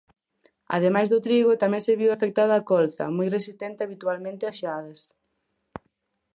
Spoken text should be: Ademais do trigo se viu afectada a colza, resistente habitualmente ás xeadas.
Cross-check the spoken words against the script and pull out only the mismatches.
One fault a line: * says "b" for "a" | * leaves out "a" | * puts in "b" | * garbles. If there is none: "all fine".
* puts in "tamén"
* puts in "moi"